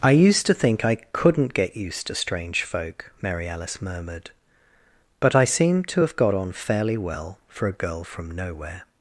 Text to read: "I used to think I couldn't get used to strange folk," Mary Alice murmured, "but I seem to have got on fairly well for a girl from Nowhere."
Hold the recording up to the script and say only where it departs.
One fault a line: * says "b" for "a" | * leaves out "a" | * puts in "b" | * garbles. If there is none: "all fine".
all fine